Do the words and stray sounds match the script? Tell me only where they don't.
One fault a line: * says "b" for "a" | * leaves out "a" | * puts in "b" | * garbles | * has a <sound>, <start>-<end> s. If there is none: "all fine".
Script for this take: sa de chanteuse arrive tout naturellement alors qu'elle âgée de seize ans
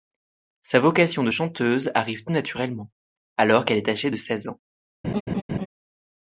* puts in "vocation"
* puts in "est"
* has a laugh, 5.0-5.7 s